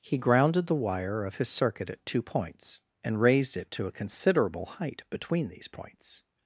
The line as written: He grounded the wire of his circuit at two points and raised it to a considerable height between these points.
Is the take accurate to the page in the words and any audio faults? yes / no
yes